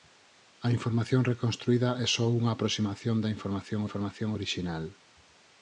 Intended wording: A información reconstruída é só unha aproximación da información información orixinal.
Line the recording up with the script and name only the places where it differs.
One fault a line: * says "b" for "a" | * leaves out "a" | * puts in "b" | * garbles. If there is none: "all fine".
all fine